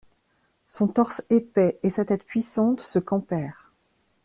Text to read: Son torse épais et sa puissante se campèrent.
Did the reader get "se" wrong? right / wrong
right